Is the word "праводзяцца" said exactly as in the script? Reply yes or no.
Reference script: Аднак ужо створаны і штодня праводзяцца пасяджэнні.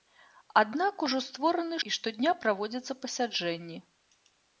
yes